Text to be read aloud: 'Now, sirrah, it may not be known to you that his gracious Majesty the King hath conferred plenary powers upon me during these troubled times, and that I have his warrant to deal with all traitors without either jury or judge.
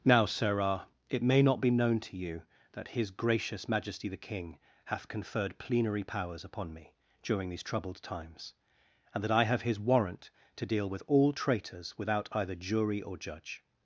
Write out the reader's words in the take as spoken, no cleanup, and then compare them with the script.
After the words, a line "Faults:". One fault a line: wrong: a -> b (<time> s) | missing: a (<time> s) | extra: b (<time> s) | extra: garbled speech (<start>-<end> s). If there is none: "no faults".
'Now, sirrah, it may not be known to you that his gracious Majesty the King hath conferred plenary powers upon me during these troubled times, and that I have his warrant to deal with all traitors without either jury or judge.
Faults:
no faults